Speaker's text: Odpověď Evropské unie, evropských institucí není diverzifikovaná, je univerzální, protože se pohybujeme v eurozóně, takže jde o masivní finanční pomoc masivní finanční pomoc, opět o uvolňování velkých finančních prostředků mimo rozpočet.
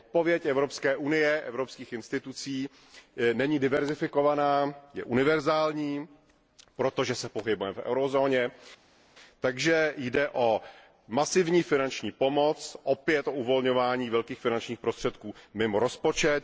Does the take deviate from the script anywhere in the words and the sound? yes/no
yes